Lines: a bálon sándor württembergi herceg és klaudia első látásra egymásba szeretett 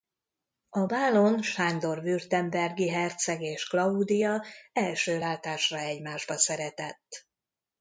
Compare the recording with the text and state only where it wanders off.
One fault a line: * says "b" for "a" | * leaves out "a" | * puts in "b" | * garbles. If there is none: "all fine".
all fine